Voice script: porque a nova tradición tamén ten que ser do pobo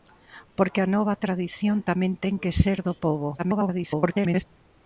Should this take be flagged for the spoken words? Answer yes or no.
yes